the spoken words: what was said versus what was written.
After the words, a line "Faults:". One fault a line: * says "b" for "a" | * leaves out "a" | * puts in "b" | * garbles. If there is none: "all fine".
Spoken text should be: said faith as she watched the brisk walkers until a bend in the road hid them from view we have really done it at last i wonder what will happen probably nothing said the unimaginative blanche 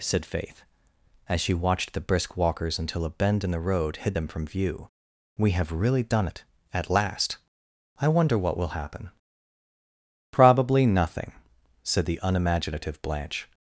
said faith as she watched the brisk walkers until a bend in the road hid them from view we have really done it at last i wonder what will happen probably nothing said the unimaginative blanche
Faults:
all fine